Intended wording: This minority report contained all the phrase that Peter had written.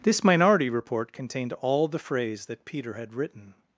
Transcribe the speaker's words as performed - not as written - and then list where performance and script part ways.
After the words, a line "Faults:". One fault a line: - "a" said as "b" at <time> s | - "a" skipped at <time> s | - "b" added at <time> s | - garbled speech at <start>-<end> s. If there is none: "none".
This minority report contained all the phrase that Peter had written.
Faults:
none